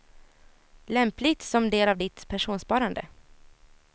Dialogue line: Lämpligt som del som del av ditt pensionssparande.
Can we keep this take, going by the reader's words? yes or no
no